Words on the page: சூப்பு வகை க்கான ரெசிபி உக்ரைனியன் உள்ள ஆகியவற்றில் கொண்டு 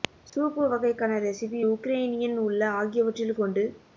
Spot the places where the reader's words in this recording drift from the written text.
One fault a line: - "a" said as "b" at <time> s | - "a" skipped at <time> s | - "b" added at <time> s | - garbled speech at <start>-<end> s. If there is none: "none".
none